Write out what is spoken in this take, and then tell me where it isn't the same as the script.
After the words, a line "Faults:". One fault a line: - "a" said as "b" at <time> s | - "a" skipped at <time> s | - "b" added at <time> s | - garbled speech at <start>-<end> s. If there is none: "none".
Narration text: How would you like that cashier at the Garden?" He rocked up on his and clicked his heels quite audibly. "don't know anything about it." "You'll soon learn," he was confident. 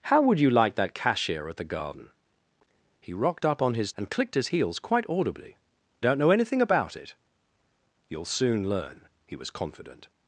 How would you like that cashier at the Garden?" He rocked up on his and clicked his heels quite audibly. "don't know anything about it." "You'll soon learn," he was confident.
Faults:
none